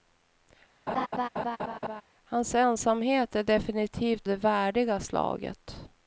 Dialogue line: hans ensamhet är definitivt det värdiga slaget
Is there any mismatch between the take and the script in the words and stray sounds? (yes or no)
yes